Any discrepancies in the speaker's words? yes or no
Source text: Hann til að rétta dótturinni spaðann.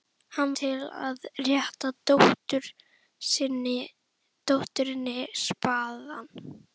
no